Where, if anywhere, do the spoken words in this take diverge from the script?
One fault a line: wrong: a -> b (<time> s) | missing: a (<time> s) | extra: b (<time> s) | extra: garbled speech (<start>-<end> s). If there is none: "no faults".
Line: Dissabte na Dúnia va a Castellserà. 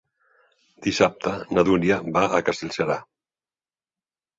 no faults